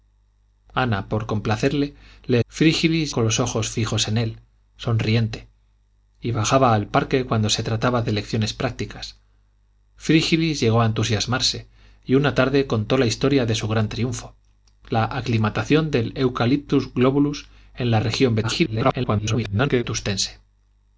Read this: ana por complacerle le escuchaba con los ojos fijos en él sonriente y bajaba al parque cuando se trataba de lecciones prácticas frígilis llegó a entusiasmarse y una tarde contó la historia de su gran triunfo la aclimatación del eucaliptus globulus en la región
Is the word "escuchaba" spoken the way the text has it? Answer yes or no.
no